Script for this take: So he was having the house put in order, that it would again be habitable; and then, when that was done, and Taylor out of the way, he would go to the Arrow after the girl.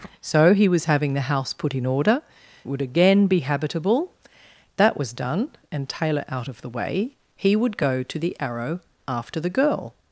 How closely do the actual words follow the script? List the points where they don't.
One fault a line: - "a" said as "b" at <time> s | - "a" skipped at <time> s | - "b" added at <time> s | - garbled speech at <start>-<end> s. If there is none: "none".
- "that" skipped at 2.2 s
- "and then when" skipped at 4.1 s